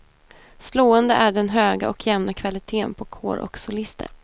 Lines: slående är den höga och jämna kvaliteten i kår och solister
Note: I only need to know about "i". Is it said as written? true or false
false